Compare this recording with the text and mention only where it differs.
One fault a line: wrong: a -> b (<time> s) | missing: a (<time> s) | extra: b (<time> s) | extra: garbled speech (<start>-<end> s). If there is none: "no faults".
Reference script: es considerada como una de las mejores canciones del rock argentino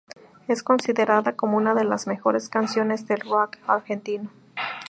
no faults